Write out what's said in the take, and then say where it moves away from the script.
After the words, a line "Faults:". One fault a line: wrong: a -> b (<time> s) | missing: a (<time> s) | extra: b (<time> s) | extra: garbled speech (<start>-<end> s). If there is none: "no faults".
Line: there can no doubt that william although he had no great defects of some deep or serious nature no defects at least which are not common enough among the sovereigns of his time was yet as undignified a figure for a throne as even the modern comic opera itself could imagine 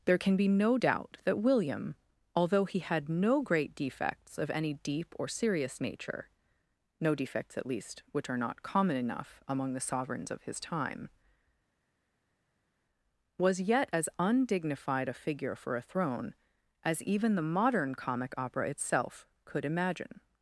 there can be no doubt that william although he had no great defects of any deep or serious nature no defects at least which are not common enough among the sovereigns of his time was yet as undignified a figure for a throne as even the modern comic opera itself could imagine
Faults:
extra: be (0.3 s)
wrong: some -> any (4.5 s)